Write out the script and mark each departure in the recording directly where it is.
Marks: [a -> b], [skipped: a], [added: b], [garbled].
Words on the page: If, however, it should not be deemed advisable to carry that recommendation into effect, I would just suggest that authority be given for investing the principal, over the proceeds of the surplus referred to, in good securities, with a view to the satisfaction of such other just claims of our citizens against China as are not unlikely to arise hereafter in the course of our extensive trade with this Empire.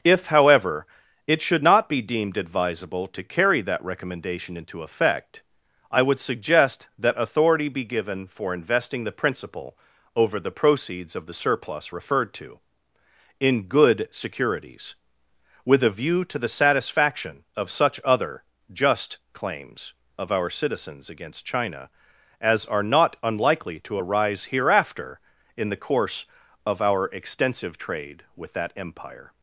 If, however, it should not be deemed advisable to carry that recommendation into effect, I would [skipped: just] suggest that authority be given for investing the principal, over the proceeds of the surplus referred to, in good securities, with a view to the satisfaction of such other just claims of our citizens against China as are not unlikely to arise hereafter in the course of our extensive trade with [this -> that] Empire.